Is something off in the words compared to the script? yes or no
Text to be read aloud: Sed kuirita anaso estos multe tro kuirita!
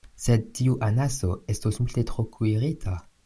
yes